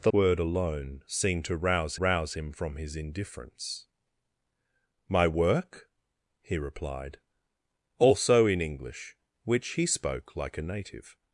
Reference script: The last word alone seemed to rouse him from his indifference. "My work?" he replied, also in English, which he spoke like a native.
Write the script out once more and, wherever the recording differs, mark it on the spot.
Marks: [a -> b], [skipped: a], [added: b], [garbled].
The [skipped: last] word alone seemed to rouse [added: rouse] him from his indifference. "My work?" he replied, also in English, which he spoke like a native.